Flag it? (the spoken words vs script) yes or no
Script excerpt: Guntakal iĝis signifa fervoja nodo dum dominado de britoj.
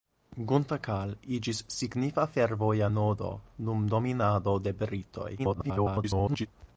yes